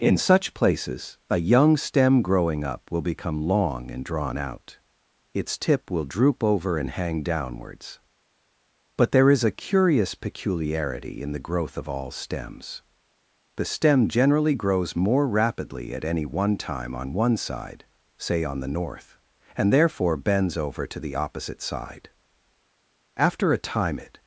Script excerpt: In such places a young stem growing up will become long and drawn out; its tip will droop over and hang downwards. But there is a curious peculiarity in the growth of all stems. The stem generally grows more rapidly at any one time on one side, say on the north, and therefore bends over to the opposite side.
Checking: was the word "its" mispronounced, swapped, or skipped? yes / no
no